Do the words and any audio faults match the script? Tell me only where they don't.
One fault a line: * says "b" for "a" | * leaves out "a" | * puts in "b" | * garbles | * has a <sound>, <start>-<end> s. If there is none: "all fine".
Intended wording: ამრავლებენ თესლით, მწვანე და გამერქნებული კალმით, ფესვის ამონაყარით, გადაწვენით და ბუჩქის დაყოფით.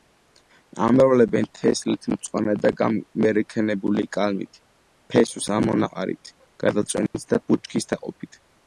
* has a dropout, 7.1-7.1 s